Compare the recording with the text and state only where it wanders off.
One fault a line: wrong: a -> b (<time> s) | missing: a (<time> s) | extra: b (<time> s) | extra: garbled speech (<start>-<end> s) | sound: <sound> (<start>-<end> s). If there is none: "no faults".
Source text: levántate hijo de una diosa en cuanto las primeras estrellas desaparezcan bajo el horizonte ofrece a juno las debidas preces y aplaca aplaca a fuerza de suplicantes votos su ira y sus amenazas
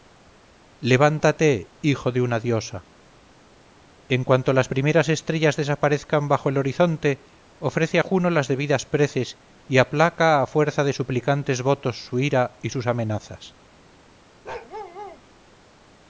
missing: aplaca (10.4 s)
sound: bark (14.4-15.2 s)